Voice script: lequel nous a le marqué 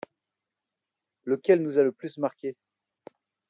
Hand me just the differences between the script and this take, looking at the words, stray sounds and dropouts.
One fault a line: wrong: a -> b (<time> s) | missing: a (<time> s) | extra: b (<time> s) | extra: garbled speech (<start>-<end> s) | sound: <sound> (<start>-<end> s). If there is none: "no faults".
extra: plus (1.9 s)